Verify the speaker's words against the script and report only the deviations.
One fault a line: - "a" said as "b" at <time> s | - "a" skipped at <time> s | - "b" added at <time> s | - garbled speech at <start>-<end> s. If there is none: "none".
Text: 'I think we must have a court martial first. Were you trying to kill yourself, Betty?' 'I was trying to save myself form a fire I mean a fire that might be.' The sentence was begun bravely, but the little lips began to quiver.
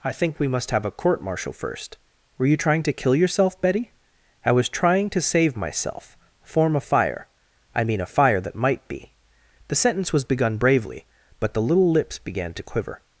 none